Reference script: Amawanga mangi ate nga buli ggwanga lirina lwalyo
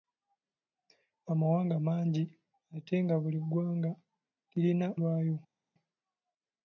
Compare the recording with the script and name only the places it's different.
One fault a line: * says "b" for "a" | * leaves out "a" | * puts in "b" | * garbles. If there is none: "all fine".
all fine